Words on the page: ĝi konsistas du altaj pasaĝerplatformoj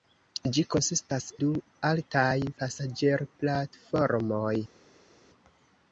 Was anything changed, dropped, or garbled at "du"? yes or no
no